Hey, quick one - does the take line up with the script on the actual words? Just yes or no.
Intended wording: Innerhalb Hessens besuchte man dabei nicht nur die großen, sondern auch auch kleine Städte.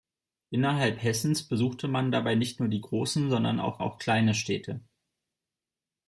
yes